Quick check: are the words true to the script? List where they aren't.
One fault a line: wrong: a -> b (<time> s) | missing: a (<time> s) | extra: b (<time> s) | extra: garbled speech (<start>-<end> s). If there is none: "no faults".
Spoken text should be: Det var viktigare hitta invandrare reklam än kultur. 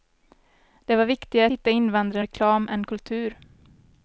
no faults